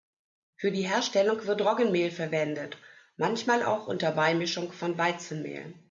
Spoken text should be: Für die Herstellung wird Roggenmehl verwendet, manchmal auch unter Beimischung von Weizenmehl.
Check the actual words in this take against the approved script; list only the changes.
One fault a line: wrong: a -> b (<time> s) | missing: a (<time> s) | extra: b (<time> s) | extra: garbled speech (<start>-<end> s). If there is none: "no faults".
no faults